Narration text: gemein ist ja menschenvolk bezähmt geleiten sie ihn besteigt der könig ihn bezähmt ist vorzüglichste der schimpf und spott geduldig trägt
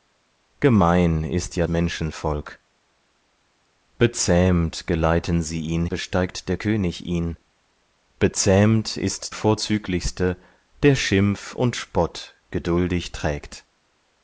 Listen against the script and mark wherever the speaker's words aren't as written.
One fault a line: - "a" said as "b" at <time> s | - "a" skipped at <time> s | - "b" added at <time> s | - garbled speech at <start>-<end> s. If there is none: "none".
none